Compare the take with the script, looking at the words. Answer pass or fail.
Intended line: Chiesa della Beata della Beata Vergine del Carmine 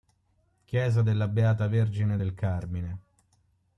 fail